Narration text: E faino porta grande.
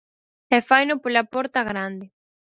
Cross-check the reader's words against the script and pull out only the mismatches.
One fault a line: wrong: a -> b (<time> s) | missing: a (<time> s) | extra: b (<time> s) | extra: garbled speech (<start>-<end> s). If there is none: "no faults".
extra: pola (1.0 s)